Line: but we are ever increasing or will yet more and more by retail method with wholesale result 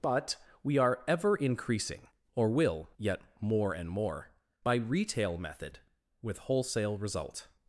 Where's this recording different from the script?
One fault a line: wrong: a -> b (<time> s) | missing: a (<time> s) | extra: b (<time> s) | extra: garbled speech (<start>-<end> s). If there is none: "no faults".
no faults